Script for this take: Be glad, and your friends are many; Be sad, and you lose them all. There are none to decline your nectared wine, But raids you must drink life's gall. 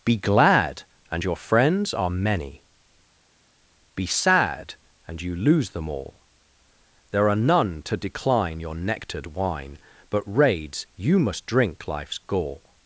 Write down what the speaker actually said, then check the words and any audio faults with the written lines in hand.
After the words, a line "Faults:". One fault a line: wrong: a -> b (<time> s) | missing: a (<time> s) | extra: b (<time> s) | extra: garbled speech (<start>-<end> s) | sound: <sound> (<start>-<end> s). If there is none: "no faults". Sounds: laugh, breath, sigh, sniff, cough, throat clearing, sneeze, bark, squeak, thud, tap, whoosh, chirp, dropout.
Be glad, and your friends are many; Be sad, and you lose them all. There are none to decline your nectared wine, But raids you must drink life's gall.
Faults:
no faults